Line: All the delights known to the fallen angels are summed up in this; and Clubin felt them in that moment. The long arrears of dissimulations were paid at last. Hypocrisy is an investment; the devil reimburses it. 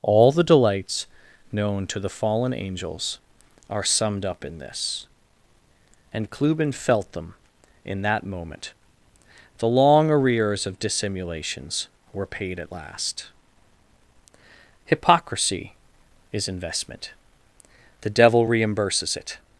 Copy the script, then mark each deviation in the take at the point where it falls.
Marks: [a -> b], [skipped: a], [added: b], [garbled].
All the delights known to the fallen angels are summed up in this; and Clubin felt them in that moment. The long arrears of dissimulations were paid at last. Hypocrisy is [skipped: an] investment; the devil reimburses it.